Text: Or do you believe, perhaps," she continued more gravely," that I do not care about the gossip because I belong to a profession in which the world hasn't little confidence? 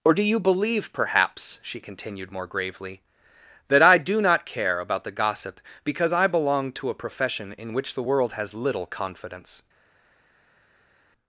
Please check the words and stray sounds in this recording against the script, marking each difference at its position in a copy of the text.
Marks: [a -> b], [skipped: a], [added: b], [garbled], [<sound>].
Or do you believe, perhaps," she continued more gravely," that I do not care about the gossip because I belong to a profession in which the world [hasn't -> has] little confidence?